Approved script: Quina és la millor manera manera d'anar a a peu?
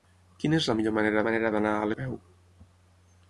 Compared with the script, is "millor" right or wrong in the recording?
right